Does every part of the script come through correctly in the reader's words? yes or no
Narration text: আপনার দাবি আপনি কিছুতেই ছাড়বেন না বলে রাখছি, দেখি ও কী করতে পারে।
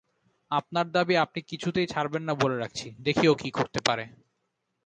yes